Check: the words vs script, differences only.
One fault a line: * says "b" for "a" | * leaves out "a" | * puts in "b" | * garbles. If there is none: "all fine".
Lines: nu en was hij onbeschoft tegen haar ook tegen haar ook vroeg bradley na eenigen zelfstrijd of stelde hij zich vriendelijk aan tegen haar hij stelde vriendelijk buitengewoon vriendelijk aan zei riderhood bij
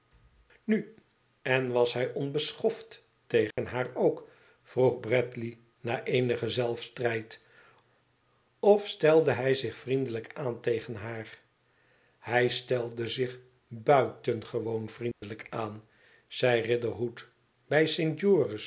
* leaves out "tegen haar ook"
* says "zich" for "vriendelijk"